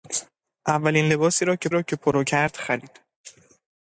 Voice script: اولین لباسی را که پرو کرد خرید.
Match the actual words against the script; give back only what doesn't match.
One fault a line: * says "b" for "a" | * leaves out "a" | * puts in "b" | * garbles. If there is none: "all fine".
* puts in "را که"